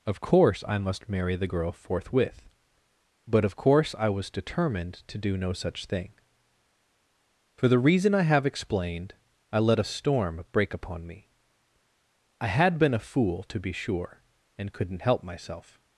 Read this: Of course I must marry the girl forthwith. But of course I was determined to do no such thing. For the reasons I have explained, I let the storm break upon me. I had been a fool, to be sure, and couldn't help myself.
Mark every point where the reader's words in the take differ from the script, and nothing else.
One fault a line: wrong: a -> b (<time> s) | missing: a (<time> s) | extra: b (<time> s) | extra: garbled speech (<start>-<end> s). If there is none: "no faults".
wrong: reasons -> reason (7.8 s)
wrong: the -> a (9.8 s)